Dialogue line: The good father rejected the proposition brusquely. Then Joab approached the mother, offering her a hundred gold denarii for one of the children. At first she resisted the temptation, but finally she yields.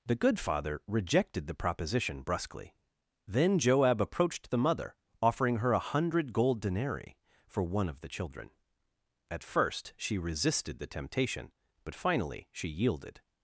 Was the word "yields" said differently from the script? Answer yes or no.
yes